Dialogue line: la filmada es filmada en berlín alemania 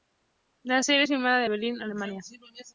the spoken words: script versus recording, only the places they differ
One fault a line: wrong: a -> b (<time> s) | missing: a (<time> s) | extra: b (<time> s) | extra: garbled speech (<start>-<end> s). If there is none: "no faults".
wrong: filmada -> serie (0.8 s)